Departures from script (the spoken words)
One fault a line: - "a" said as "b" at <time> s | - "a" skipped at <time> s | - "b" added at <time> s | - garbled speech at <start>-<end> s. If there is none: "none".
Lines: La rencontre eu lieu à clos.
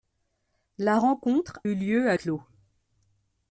none